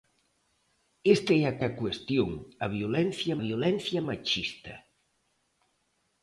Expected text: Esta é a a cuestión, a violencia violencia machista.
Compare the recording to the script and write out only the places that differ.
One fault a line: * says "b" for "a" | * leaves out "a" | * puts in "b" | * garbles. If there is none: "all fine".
all fine